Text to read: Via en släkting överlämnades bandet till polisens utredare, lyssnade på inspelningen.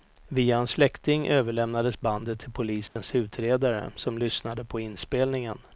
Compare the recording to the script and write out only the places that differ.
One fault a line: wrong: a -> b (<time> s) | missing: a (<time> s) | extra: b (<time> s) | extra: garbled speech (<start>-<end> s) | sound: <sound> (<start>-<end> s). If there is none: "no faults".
sound: dropout (2.9-3.0 s)
extra: som (4.0 s)